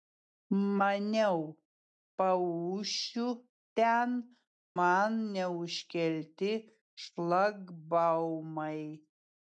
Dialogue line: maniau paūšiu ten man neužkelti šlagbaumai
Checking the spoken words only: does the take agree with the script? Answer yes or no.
yes